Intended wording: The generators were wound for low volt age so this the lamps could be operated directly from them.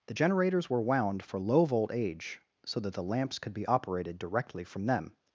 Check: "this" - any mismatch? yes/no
yes